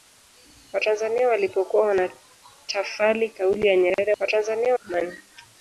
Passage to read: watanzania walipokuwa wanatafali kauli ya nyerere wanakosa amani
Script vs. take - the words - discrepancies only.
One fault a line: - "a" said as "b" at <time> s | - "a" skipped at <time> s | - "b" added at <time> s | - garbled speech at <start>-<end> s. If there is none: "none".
- "wanakosa" said as "watanzania" at 4.2 s